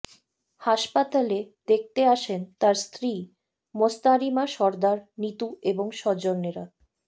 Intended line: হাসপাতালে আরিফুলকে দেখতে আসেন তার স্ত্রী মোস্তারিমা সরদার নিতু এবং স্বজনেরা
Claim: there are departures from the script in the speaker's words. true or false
true